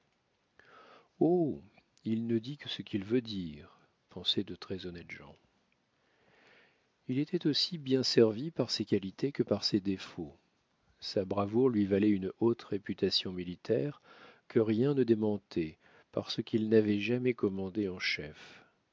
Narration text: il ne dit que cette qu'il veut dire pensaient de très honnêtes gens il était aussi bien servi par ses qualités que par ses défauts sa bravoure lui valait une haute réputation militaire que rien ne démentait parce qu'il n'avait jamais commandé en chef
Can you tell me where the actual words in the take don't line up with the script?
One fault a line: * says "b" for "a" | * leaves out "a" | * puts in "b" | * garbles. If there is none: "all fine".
* says "ce" for "cette"